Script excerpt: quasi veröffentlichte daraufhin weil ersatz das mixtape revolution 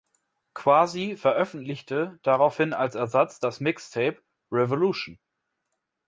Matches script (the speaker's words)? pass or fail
fail